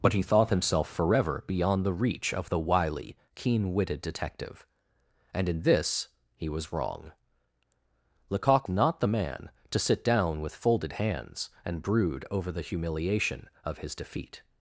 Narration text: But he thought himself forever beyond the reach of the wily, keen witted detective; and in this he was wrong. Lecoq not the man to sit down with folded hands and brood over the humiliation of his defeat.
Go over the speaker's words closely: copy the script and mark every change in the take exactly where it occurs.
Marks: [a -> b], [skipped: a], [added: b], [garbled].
But he thought himself forever beyond the reach of the wily, keen witted detective; and in this he was wrong. Lecoq not the man to sit down with folded hands and brood over the humiliation of his defeat.